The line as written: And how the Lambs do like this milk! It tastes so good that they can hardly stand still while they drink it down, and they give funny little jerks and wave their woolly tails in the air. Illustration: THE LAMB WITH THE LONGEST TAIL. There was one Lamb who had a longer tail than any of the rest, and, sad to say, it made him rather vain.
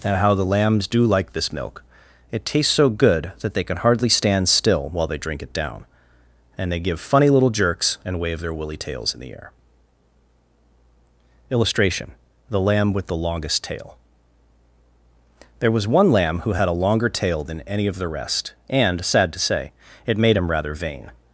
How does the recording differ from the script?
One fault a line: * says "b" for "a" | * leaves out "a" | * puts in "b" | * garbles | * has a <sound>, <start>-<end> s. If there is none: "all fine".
all fine